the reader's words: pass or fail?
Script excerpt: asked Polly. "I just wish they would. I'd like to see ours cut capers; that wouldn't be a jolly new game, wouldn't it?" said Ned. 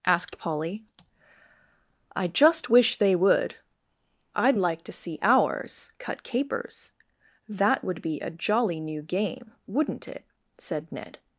fail